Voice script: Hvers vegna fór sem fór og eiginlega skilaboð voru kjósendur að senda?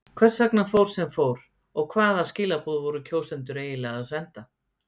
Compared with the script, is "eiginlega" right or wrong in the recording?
wrong